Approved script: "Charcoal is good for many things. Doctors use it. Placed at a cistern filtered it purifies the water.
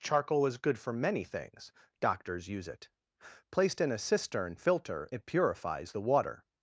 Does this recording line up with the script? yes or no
no